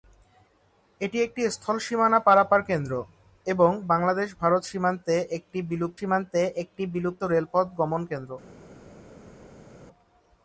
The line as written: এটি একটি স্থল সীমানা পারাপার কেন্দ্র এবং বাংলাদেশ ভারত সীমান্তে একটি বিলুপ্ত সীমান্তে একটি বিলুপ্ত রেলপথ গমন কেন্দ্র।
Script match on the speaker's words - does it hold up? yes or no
yes